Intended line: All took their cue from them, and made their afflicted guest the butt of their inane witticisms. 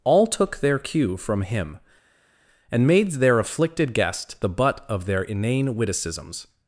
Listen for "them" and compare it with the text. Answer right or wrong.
wrong